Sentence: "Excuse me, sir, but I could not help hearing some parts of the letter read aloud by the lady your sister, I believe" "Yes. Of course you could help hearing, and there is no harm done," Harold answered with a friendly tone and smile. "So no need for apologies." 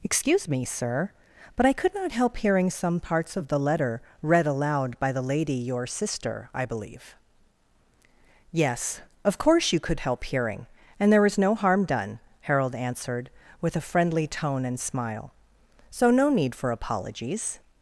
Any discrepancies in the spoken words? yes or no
no